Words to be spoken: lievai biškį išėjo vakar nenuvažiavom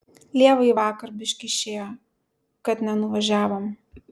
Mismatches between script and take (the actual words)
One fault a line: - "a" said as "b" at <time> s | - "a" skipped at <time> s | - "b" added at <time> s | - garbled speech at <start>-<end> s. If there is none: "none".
- "vakar" added at 0.8 s
- "vakar" said as "kad" at 2.7 s